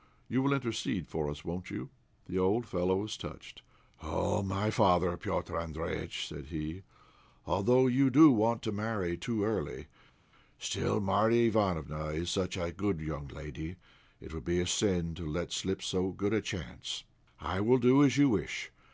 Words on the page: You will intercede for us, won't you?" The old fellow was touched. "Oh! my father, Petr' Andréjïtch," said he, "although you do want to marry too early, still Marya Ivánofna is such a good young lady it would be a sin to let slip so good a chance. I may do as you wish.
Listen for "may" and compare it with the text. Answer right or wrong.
wrong